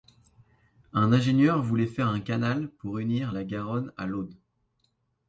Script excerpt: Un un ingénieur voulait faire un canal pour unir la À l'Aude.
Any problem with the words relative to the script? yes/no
yes